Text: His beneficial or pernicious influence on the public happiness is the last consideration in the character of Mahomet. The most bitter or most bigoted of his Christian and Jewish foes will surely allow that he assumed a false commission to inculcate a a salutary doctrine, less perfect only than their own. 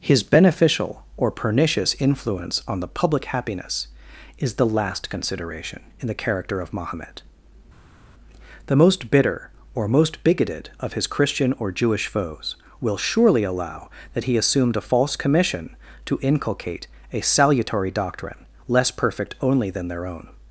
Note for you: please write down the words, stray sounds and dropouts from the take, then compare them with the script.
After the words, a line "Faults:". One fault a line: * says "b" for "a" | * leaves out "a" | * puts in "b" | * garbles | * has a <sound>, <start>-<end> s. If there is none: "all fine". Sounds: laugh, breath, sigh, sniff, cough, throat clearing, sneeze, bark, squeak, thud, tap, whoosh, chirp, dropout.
His beneficial or pernicious influence on the public happiness is the last consideration in the character of Mahomet. The most bitter or most bigoted of his Christian or Jewish foes will surely allow that he assumed a false commission to inculcate a salutary doctrine, less perfect only than their own.
Faults:
* says "or" for "and"
* leaves out "a"